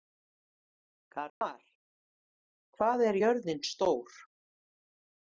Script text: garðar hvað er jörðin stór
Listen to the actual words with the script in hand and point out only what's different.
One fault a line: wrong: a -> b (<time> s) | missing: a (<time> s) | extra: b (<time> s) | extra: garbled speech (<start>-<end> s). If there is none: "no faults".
no faults